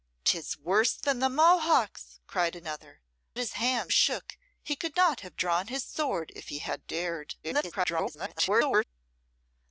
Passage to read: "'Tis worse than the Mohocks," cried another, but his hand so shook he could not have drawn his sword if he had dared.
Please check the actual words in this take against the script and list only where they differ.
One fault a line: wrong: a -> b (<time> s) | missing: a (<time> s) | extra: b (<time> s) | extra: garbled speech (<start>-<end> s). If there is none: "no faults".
missing: but (3.0 s)
missing: so (3.9 s)
extra: garbled speech (7.4-8.8 s)